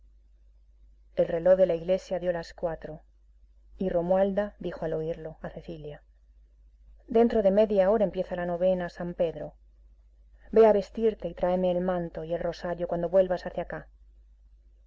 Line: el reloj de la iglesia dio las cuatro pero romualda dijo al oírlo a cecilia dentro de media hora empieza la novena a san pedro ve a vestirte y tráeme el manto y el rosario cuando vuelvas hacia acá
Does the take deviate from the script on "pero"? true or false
true